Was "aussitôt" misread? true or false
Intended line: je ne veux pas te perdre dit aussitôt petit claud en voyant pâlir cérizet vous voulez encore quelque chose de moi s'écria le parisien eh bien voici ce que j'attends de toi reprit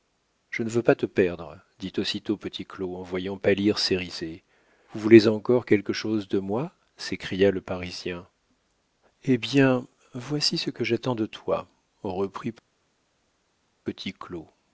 false